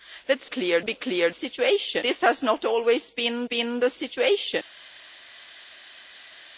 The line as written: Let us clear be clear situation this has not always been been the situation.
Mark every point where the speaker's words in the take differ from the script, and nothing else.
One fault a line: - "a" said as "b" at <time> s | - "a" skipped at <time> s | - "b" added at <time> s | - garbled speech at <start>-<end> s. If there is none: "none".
none